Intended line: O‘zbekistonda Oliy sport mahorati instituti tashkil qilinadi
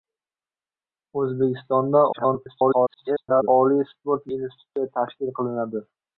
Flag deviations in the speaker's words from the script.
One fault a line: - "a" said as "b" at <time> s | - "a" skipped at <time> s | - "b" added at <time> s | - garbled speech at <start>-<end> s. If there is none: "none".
- garbled speech at 2.1-3.5 s
- "mahorati" skipped at 4.3 s